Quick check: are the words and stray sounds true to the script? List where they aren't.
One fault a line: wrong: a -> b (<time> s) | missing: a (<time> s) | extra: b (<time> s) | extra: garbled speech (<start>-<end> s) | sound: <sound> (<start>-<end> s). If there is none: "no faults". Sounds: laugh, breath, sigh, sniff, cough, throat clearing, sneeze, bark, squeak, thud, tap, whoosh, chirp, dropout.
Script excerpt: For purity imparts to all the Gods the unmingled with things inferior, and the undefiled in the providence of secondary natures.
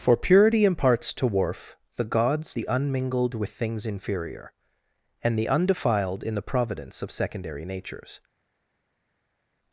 wrong: all -> worf (1.3 s)